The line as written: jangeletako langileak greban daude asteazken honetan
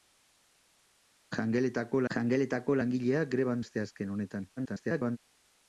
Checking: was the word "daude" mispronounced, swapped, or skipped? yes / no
yes